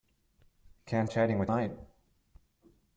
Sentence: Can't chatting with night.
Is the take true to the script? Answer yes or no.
yes